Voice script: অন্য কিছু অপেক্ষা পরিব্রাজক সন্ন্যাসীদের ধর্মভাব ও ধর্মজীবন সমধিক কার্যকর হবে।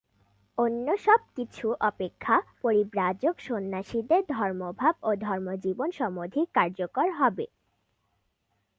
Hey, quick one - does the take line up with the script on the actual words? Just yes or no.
no